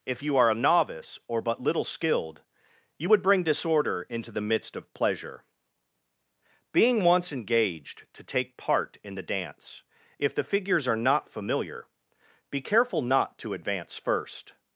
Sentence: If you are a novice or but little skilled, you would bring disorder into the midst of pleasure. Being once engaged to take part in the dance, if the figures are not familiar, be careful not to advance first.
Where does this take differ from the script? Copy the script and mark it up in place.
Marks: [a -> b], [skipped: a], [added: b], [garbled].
If you are a novice or but little skilled, you would bring disorder into the midst of pleasure. Being once engaged to take part in the dance, if the figures are not familiar, be careful not to advance first.